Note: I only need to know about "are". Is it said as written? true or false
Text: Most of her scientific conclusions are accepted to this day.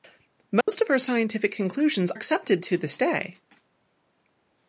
false